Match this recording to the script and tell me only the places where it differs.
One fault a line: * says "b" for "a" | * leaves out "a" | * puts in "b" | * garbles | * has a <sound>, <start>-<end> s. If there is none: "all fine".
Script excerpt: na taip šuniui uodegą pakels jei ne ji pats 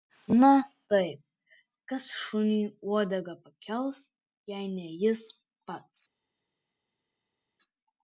* puts in "kas"
* says "jis" for "ji"